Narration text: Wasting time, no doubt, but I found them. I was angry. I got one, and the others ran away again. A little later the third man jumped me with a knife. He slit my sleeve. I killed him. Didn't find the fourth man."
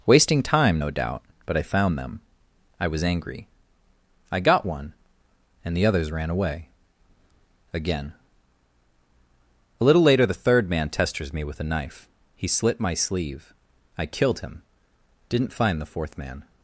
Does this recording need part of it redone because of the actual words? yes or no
yes